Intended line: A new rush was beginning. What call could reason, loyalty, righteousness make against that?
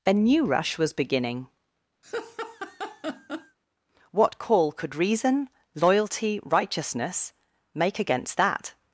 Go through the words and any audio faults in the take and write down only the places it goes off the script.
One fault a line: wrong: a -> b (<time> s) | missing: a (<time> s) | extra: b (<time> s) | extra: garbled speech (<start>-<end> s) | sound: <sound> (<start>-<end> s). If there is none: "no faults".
sound: laugh (2.0-3.6 s)